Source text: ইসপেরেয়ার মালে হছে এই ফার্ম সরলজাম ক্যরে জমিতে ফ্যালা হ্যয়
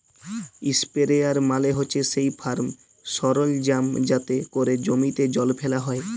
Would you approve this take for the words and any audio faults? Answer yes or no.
no